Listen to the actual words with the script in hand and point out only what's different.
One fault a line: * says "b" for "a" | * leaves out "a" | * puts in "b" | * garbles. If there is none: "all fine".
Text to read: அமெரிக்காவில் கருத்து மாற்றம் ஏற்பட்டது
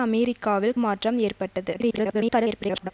* leaves out "கருத்து"
* garbles